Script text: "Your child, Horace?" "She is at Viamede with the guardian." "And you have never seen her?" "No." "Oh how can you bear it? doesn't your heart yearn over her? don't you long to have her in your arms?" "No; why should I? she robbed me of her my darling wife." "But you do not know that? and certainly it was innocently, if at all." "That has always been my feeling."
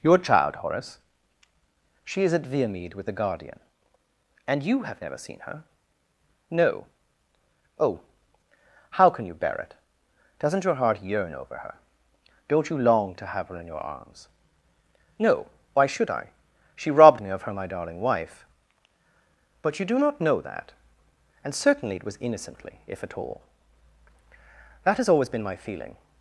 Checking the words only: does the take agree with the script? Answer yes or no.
yes